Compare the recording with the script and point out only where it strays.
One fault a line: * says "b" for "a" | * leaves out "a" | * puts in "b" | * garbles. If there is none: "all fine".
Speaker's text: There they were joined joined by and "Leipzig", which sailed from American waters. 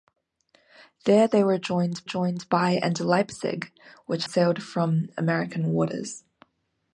all fine